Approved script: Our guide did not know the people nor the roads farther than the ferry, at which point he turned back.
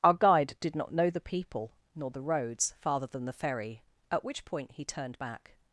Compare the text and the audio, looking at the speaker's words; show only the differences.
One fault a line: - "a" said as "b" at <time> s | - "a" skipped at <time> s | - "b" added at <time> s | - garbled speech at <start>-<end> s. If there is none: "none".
none